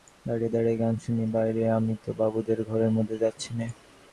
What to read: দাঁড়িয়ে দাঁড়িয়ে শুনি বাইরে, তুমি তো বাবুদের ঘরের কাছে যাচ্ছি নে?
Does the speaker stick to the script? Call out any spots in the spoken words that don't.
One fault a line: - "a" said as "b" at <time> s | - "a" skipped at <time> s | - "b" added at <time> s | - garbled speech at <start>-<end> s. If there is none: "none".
- "গান" added at 0.8 s
- "তুমি" said as "আমি" at 1.7 s
- "কাছে" said as "মধ্যে" at 2.9 s